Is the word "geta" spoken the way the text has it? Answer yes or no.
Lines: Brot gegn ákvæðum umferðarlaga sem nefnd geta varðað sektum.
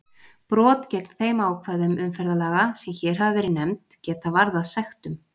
yes